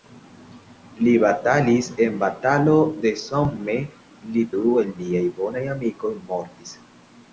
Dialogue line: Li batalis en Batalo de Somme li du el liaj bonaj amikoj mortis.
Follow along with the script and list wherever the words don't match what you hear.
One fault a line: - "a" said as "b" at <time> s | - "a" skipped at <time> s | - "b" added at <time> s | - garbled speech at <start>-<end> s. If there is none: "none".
none